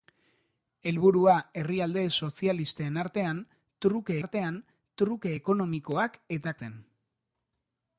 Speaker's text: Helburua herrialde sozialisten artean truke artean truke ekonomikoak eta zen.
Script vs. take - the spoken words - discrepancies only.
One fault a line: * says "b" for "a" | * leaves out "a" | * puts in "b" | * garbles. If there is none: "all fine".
all fine